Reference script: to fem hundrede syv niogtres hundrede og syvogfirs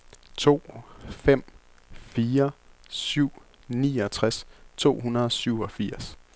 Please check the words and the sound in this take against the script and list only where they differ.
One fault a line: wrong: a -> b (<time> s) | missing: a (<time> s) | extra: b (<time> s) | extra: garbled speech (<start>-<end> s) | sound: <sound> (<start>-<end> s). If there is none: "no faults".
wrong: hundrede -> fire (1.9 s)
extra: to (4.8 s)